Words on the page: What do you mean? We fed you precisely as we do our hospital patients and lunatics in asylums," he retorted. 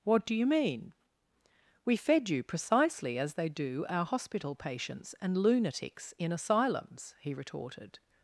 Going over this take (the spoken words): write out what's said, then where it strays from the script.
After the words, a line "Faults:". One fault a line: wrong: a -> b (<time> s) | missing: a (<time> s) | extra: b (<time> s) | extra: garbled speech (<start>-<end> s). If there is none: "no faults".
What do you mean? We fed you precisely as they do our hospital patients and lunatics in asylums," he retorted.
Faults:
wrong: we -> they (3.3 s)